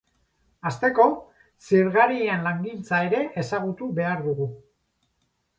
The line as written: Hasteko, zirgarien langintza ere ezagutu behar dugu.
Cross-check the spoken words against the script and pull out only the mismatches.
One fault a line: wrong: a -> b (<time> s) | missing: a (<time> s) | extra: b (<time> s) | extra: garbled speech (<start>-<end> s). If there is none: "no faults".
no faults